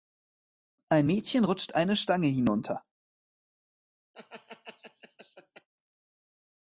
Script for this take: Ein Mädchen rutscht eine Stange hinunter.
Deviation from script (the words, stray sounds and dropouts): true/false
true